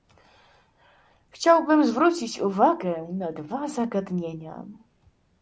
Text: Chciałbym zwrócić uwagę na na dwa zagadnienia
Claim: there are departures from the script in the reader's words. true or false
true